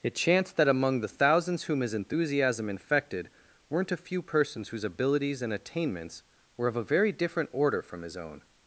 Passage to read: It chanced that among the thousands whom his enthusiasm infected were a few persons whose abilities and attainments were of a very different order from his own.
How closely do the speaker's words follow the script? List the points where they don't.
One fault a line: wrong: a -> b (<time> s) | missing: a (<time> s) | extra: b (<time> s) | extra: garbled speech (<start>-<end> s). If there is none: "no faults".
wrong: were -> weren't (3.7 s)